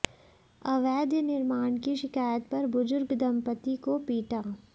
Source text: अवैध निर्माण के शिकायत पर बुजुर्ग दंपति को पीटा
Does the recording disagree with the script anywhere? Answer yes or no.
yes